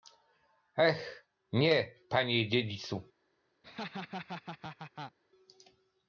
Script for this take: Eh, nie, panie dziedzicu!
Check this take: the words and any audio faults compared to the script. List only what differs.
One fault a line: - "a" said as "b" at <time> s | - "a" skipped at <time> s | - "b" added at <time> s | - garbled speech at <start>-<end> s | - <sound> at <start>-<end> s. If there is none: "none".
- laugh at 3.6-5.2 s